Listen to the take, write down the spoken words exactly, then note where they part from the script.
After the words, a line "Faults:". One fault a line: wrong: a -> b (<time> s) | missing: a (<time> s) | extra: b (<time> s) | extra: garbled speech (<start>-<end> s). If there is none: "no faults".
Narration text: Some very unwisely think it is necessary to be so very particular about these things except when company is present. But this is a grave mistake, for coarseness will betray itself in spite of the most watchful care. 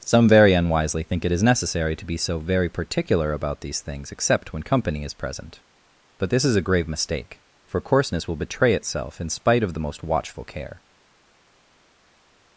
Some very unwisely think it is necessary to be so very particular about these things except when company is present. But this is a grave mistake, for coarseness will betray itself in spite of the most watchful care.
Faults:
no faults